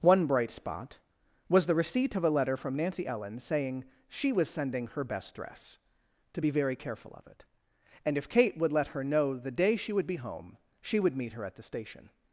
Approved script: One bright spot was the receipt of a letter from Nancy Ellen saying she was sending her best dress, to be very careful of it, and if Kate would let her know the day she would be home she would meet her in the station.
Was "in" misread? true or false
true